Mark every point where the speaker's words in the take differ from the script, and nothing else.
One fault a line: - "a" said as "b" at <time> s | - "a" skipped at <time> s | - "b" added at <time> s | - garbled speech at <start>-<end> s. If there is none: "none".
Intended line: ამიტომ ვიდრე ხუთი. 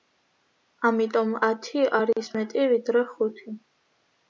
- "ათი არის მეტი" added at 1.5 s